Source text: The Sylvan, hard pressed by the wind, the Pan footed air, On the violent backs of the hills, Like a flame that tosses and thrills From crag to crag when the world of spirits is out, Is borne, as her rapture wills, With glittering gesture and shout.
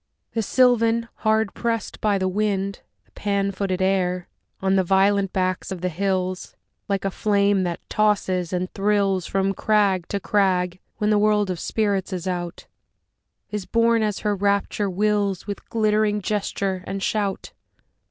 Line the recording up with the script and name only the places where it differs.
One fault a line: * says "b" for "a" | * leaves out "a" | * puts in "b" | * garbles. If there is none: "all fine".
all fine